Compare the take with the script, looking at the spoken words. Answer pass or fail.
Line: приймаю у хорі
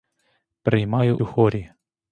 pass